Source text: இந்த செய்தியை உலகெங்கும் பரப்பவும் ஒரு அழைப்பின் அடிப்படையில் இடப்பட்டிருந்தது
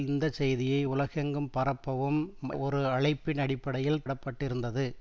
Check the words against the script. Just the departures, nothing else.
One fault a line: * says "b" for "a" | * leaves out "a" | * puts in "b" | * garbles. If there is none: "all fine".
all fine